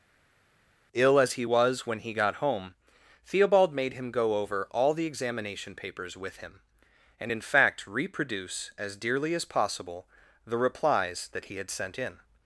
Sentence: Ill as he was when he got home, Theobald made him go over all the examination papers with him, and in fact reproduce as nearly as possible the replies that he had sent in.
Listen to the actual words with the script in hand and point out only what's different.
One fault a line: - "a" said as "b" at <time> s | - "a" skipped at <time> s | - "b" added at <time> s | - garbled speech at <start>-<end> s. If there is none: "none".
- "nearly" said as "dearly" at 8.9 s